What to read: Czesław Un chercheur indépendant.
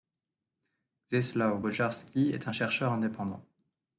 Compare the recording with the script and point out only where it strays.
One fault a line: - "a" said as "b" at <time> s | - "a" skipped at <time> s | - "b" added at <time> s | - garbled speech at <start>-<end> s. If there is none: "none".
- "Bojarski est" added at 1.6 s